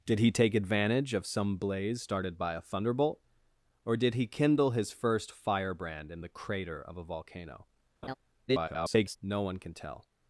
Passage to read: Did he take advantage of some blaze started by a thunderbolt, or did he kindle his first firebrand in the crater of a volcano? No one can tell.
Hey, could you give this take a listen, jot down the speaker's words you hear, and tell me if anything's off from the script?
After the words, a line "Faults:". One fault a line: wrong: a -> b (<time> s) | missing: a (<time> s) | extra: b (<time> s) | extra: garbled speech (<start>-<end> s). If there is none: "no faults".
Did he take advantage of some blaze started by a thunderbolt, or did he kindle his first firebrand in the crater of a volcano? [garbled] No one can tell.
Faults:
extra: garbled speech (8.5-9.2 s)